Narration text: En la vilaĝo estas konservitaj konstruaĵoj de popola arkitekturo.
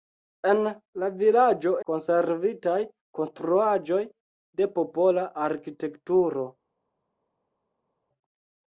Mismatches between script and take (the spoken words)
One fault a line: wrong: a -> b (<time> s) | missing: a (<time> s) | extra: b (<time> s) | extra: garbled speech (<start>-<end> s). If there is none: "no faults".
missing: estas (1.7 s)